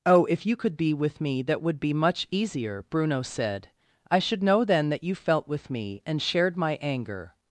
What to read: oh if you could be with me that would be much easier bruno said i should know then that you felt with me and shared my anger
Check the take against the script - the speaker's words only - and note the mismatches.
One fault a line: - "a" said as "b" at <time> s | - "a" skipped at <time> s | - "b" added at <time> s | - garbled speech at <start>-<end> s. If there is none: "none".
none